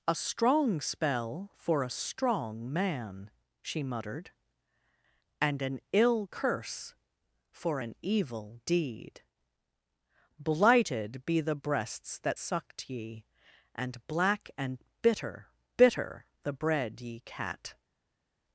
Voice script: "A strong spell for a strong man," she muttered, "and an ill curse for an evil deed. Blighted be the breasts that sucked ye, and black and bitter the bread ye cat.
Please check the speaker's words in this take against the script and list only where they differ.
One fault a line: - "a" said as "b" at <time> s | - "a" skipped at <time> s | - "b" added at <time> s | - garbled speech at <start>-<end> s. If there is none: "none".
- "bitter" added at 15.8 s